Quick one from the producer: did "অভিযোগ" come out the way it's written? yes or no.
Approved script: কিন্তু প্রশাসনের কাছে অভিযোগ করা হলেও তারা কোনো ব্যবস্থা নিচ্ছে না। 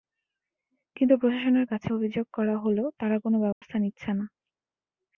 yes